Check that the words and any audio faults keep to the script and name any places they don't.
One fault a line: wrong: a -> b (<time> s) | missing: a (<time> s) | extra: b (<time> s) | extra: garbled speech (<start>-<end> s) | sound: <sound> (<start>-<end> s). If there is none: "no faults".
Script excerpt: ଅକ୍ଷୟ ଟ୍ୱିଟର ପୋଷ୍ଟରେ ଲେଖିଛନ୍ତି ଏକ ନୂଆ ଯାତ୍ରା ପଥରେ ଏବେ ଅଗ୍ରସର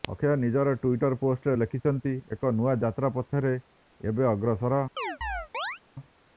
extra: ନିଜର (0.4 s)
sound: chirp (5.0-5.8 s)